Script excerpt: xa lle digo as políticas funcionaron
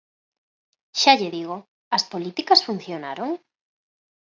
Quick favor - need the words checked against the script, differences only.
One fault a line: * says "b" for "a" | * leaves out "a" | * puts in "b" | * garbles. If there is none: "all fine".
all fine